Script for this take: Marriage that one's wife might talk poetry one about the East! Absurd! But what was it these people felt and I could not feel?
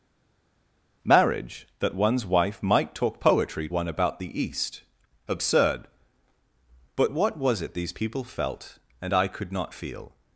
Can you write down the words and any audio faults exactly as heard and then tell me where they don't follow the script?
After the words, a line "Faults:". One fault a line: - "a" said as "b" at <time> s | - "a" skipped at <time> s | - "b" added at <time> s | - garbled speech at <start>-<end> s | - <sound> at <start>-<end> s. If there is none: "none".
Marriage that one's wife might talk poetry one about the East! Absurd! But what was it these people felt and I could not feel?
Faults:
none